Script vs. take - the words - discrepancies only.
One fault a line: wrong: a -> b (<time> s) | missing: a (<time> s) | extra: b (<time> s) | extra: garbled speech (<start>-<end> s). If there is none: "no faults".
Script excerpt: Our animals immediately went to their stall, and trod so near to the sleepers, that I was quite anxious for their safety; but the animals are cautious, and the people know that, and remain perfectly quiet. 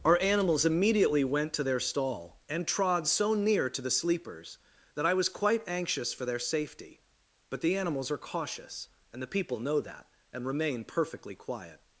no faults